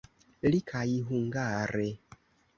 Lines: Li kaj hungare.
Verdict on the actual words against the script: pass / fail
pass